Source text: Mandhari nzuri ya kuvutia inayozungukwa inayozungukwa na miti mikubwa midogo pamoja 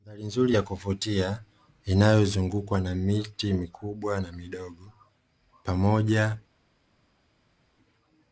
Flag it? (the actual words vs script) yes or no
yes